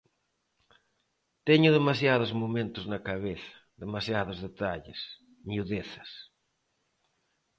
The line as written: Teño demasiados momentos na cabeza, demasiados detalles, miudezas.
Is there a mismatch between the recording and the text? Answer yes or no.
no